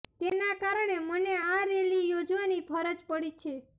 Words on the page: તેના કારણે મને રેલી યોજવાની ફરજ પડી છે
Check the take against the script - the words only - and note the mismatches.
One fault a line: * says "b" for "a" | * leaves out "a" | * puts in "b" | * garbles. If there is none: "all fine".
* puts in "આ"